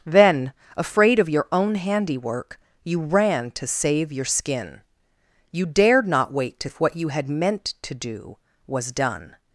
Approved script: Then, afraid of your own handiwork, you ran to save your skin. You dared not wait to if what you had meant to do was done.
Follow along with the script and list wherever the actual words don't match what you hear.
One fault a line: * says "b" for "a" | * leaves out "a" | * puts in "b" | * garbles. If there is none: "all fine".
all fine